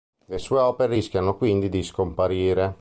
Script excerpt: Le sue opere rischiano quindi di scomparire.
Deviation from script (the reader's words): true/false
false